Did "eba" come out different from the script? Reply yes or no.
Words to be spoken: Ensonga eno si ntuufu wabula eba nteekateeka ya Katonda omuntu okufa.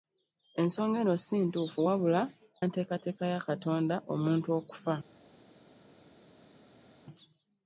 yes